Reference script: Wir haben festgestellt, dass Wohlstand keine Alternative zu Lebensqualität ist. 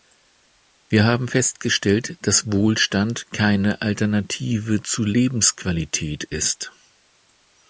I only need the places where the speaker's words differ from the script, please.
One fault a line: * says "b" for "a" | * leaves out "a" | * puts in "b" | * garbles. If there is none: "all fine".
all fine